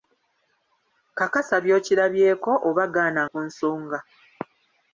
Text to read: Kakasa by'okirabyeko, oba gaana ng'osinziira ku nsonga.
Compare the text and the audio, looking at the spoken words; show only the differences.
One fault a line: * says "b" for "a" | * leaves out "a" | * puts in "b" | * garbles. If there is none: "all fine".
* leaves out "ng'osinziira"